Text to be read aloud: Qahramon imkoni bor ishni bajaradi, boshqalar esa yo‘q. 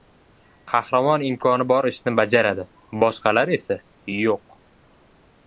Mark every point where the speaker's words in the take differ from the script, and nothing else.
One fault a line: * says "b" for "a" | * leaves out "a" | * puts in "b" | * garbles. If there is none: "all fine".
all fine